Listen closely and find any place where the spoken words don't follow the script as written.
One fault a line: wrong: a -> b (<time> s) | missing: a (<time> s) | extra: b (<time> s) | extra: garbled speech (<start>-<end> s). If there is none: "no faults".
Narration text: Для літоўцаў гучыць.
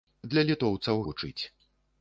no faults